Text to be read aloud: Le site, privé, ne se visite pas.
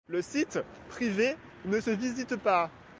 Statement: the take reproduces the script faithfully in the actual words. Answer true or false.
true